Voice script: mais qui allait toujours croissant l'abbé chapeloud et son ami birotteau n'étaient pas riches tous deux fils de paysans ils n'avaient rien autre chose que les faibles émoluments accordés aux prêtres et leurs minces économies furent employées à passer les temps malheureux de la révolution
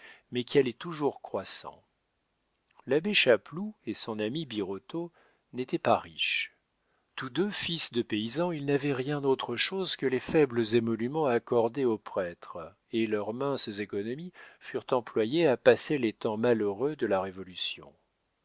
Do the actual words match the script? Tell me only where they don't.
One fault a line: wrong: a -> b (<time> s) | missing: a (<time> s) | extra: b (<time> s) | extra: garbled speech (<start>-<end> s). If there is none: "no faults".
no faults